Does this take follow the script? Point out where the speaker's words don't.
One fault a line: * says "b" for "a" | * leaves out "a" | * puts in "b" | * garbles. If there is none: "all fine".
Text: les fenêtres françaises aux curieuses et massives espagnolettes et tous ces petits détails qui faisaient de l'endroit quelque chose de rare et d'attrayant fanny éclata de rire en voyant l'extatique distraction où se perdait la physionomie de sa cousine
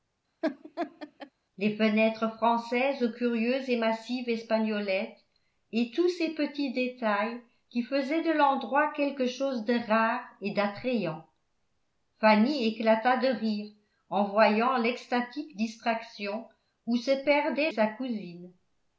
* leaves out "la physionomie de"